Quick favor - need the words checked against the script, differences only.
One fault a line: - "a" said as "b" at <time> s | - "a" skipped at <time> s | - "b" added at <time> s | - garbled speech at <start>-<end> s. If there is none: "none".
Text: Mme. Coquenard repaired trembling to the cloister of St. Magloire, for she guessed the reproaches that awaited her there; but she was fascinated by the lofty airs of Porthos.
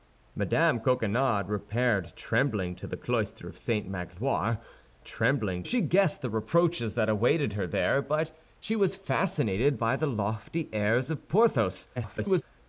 - "for" said as "trembling" at 5.0 s
- garbled speech at 12.0-12.4 s